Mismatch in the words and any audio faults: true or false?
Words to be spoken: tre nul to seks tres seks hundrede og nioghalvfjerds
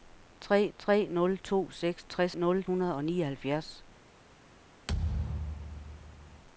true